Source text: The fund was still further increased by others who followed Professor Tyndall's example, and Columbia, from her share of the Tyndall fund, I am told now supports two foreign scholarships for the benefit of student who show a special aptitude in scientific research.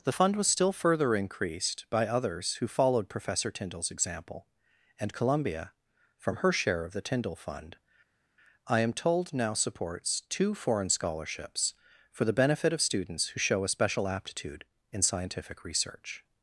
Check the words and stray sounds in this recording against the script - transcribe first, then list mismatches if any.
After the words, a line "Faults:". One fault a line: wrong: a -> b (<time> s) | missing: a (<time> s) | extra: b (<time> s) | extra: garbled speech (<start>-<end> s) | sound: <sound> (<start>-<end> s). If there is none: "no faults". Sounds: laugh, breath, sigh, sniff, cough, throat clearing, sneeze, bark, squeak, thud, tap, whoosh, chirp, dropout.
The fund was still further increased by others who followed Professor Tyndall's example, and Columbia, from her share of the Tyndall fund, I am told now supports two foreign scholarships for the benefit of students who show a special aptitude in scientific research.
Faults:
wrong: student -> students (12.8 s)